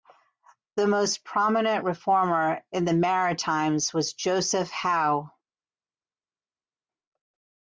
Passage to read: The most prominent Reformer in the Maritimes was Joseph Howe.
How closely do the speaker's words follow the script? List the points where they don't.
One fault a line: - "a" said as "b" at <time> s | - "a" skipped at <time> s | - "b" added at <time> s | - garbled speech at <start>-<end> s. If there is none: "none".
none